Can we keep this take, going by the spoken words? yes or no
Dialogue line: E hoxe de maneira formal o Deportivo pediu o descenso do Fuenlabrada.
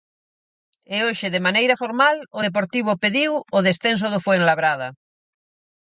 yes